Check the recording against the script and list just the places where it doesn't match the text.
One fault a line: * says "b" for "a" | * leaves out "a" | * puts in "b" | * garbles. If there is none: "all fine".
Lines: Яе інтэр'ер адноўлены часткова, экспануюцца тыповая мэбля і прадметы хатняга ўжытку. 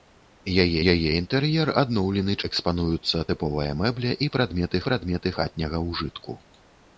* puts in "яе"
* leaves out "часткова"
* puts in "прадметы"